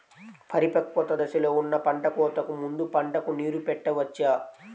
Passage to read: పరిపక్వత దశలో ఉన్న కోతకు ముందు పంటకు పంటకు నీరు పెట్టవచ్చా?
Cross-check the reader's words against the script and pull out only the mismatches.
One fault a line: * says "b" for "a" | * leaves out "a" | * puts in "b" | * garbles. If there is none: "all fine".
* puts in "పంట"
* leaves out "పంటకు"